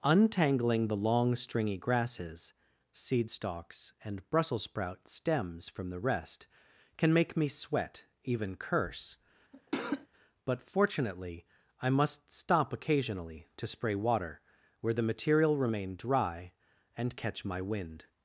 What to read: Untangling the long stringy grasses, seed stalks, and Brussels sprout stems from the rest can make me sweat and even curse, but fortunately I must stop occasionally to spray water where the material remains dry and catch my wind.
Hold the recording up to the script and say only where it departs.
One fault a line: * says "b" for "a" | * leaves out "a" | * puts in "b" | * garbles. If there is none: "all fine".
* leaves out "and"
* says "remain" for "remains"